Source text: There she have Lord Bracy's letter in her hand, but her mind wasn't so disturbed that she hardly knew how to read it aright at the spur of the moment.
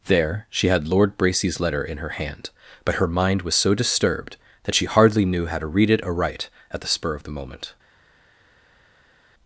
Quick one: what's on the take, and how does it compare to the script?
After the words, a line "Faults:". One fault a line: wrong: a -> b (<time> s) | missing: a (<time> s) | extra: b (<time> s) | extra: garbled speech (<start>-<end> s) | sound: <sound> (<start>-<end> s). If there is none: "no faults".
There she had Lord Bracy's letter in her hand, but her mind was so disturbed that she hardly knew how to read it aright at the spur of the moment.
Faults:
wrong: have -> had (0.7 s)
wrong: wasn't -> was (3.4 s)